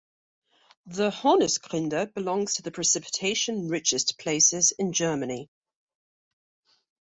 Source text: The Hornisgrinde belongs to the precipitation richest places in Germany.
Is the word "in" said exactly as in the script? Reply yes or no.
yes